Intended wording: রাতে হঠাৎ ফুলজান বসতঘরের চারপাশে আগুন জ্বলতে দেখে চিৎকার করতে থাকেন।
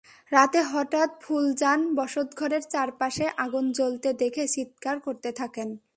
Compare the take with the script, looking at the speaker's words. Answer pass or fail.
pass